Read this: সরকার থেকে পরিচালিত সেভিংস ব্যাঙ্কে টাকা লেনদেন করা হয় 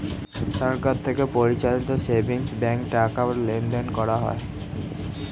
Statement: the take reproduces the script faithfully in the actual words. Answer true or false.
true